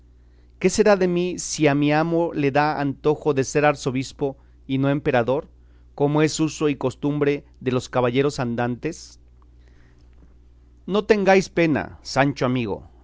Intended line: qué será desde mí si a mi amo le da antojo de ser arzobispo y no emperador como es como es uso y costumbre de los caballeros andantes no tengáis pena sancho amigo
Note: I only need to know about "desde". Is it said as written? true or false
false